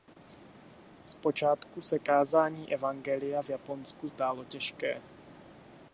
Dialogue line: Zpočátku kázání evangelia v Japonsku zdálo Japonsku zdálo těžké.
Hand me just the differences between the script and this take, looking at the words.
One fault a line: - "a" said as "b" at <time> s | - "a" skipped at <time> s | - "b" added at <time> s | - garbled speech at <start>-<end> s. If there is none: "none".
- "se" added at 1.8 s
- "Japonsku zdálo" skipped at 4.4 s